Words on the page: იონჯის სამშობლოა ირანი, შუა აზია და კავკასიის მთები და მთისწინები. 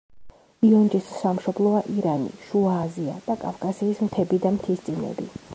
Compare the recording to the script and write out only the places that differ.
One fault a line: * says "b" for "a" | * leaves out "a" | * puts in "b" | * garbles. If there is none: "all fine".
all fine